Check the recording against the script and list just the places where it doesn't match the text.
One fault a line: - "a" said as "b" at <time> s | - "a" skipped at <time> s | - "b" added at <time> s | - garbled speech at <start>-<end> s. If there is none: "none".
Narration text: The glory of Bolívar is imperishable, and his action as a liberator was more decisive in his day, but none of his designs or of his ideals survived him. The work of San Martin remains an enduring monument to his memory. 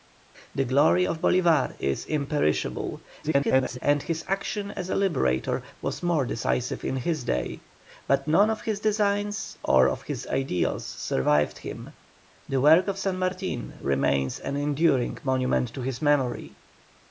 - garbled speech at 3.2-3.8 s